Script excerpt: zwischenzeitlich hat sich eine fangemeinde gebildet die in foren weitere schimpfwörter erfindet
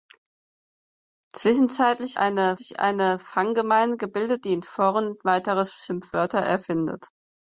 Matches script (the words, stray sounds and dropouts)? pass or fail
fail